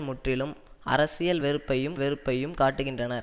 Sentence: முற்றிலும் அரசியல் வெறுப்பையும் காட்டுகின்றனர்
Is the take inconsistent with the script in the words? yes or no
yes